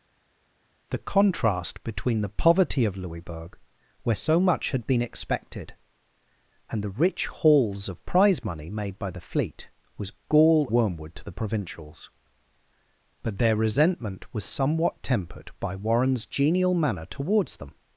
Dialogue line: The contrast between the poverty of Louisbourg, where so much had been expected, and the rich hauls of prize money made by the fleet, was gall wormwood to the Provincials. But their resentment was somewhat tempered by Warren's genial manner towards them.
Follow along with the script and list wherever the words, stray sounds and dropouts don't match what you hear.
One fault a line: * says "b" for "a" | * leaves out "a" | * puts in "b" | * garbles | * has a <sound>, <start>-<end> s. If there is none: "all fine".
all fine